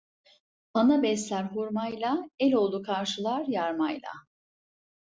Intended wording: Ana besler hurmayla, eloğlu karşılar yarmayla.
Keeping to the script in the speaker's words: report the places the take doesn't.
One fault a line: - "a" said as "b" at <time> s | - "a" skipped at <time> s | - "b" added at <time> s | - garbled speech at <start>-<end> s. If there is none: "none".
none